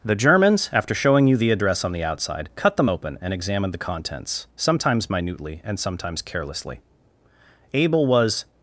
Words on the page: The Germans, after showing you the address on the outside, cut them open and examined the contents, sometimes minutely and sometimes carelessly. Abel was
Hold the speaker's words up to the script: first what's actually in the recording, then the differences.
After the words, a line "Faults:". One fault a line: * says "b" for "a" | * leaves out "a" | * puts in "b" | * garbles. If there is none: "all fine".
The Germans, after showing you the address on the outside, cut them open and examined the contents, sometimes minutely and sometimes carelessly. Abel was
Faults:
all fine